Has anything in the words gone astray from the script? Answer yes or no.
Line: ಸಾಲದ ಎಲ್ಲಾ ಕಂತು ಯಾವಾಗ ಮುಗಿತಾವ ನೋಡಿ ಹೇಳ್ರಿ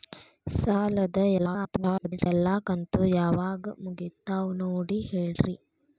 yes